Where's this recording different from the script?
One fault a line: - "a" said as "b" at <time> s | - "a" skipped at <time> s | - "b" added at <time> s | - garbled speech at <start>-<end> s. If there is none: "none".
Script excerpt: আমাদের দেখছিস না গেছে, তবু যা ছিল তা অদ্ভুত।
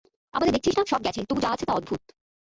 - "সব" added at 0.9 s
- "ছিল" said as "আছে" at 1.5 s